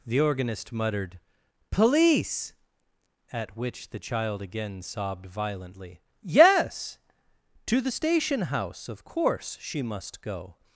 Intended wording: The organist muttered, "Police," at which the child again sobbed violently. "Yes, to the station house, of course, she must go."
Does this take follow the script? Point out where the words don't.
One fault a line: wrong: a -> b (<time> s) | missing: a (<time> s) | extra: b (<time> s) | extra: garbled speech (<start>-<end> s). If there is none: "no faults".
no faults